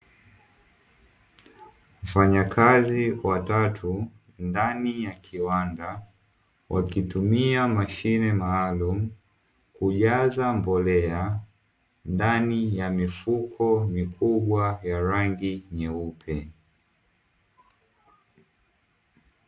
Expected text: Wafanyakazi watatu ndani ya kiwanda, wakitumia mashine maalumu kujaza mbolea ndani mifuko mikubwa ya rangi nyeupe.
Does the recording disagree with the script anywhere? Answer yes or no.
yes